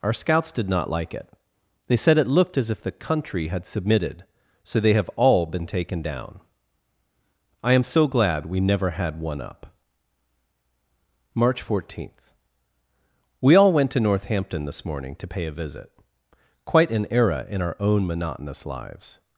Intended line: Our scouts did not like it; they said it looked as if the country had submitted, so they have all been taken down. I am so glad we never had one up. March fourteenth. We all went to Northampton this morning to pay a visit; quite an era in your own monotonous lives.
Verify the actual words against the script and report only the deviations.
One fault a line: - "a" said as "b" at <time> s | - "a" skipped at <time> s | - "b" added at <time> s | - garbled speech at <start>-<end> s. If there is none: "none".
- "your" said as "our" at 17.6 s